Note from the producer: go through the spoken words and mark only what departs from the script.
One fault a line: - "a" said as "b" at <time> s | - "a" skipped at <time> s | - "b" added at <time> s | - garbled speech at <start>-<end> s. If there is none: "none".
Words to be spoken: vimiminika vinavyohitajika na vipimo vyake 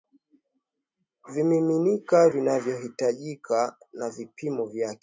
none